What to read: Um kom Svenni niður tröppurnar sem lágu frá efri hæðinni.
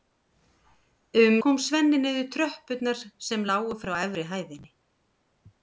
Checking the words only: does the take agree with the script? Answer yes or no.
yes